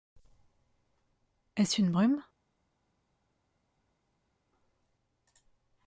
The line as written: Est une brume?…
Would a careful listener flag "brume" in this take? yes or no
no